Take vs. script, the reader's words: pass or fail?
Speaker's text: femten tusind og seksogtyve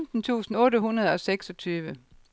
fail